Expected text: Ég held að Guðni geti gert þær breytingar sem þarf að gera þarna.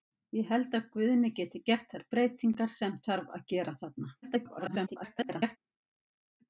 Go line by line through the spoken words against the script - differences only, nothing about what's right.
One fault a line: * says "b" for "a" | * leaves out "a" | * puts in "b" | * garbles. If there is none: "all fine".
* garbles